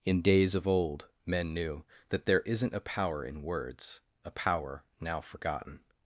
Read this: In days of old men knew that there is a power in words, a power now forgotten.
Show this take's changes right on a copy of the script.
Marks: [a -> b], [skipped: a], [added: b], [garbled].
In days of old men knew that there [is -> isn't] a power in words, a power now forgotten.